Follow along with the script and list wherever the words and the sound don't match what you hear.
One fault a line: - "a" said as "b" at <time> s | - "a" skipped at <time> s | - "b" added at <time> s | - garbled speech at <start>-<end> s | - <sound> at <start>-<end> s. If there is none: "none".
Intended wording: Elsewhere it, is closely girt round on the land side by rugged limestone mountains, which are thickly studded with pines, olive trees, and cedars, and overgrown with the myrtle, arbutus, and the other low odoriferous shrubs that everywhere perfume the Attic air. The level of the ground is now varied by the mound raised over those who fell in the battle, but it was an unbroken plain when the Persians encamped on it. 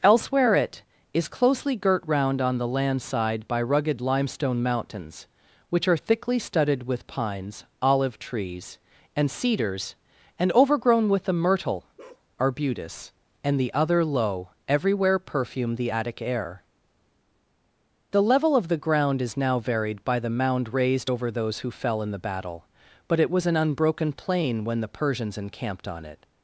- bark at 12.0-12.3 s
- "odoriferous shrubs that" skipped at 14.5 s